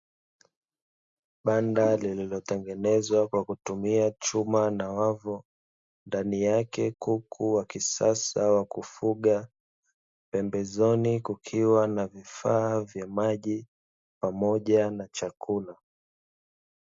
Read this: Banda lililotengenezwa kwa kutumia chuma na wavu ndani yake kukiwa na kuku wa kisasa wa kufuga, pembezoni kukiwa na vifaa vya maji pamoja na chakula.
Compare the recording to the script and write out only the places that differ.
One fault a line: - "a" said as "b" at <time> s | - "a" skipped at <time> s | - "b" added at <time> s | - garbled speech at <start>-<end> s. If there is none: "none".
- "kukiwa na" skipped at 6.9 s